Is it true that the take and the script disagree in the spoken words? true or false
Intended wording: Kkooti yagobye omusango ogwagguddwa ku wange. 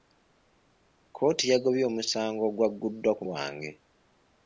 false